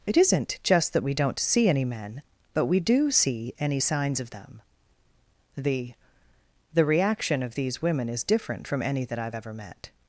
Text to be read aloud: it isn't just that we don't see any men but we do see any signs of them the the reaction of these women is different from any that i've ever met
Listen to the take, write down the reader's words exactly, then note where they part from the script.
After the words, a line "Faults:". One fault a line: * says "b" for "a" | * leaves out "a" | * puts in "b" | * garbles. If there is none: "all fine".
it isn't just that we don't see any men but we do see any signs of them the the reaction of these women is different from any that i've ever met
Faults:
all fine